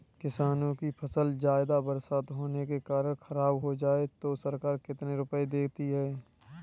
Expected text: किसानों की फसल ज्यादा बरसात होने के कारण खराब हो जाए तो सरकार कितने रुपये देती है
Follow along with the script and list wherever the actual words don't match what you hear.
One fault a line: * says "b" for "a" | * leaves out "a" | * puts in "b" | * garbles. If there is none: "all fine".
all fine